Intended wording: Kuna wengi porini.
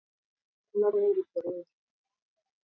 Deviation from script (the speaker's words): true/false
false